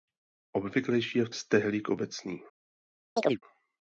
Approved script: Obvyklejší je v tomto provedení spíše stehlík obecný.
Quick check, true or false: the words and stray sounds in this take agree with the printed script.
false